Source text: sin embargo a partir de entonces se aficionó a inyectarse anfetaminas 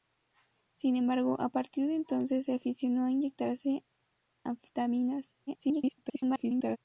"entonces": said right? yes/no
yes